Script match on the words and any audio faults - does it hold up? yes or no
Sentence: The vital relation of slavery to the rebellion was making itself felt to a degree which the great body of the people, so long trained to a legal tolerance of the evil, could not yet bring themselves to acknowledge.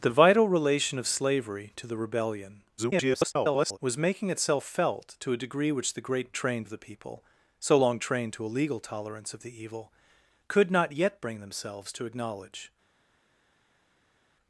no